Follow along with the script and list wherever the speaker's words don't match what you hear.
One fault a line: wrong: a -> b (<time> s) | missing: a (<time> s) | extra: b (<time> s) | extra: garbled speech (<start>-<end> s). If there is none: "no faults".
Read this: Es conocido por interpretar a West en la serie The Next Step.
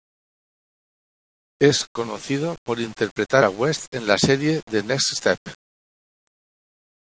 no faults